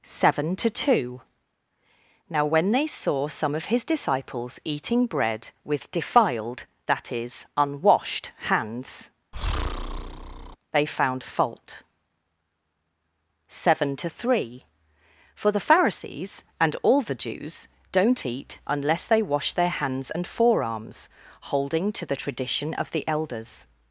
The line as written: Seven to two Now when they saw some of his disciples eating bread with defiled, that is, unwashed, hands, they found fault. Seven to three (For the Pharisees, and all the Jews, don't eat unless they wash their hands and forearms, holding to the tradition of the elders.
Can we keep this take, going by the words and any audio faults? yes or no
no